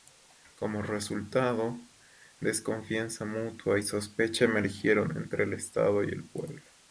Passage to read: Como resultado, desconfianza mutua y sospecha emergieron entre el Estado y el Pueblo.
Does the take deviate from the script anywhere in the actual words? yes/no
no